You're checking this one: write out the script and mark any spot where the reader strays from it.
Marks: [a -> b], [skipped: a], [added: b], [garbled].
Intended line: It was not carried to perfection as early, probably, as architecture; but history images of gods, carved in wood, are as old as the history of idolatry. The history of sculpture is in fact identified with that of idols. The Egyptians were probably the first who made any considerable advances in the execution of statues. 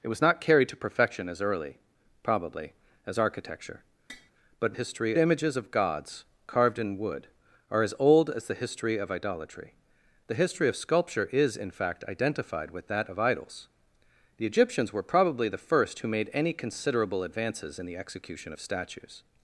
It was not carried to perfection as early, probably, as architecture; but history images of gods, carved in wood, are as old as the history of idolatry. The history of sculpture is in fact identified with that of idols. The Egyptians were probably the first who made any considerable advances in the execution of statues.